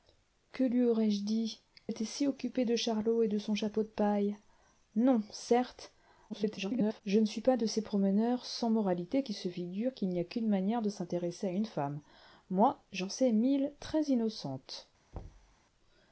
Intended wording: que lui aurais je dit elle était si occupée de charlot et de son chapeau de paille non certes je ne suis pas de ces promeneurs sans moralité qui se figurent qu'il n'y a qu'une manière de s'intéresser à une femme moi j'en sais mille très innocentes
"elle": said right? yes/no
no